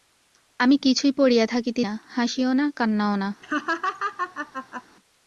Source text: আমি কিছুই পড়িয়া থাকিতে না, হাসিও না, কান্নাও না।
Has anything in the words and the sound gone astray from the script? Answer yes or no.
yes